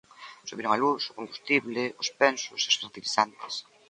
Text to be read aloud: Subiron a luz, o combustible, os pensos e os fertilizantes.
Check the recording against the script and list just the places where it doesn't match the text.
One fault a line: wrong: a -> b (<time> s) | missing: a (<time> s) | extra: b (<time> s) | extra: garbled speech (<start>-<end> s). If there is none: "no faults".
no faults